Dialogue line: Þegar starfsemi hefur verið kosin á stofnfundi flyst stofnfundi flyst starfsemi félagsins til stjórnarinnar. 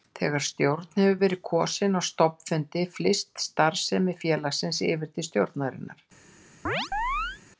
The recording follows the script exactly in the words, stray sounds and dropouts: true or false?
false